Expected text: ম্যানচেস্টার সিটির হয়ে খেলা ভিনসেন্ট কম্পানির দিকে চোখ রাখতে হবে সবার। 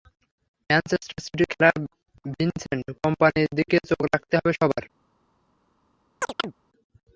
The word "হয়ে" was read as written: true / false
false